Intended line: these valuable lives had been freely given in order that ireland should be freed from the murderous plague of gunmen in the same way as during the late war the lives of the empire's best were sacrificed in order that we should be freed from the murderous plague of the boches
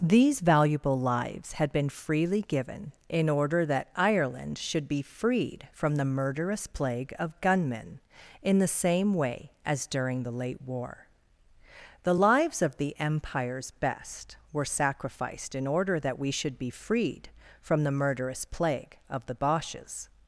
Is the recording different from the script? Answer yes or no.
no